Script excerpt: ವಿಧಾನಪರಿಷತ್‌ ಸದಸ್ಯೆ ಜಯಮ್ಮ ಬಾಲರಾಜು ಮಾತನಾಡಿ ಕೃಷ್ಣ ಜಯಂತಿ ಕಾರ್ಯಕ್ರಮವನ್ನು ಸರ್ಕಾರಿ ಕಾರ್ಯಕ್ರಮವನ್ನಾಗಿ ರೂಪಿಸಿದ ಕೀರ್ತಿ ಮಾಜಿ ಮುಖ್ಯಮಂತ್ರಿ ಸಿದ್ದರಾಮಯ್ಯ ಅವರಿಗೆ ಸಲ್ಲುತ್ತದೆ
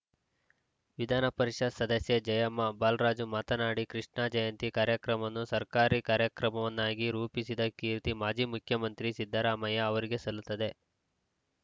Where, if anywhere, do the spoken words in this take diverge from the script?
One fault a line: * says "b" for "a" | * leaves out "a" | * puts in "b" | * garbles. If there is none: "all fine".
all fine